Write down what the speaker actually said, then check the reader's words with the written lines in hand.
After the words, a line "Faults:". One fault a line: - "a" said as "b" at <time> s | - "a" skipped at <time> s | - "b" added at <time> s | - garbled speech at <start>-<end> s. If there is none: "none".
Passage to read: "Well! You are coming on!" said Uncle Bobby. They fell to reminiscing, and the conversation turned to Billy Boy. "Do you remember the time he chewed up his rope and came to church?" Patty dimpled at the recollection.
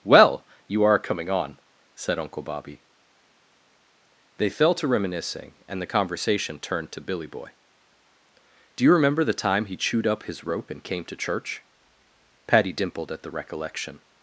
"Well! You are coming on!" said Uncle Bobby. They fell to reminiscing, and the conversation turned to Billy Boy. "Do you remember the time he chewed up his rope and came to church?" Patty dimpled at the recollection.
Faults:
none